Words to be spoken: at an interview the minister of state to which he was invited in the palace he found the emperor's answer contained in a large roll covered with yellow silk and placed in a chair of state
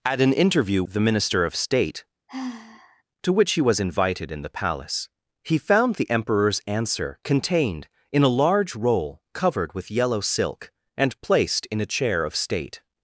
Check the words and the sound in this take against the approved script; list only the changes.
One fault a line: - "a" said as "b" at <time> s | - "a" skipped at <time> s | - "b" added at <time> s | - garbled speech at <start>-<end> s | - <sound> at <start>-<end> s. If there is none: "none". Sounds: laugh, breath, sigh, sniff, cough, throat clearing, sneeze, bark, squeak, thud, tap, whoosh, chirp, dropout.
- sigh at 2.3-3.0 s